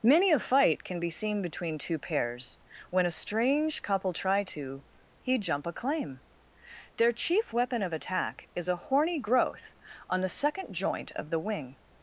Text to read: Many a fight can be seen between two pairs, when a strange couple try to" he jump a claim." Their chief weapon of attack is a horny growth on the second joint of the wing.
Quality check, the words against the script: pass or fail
pass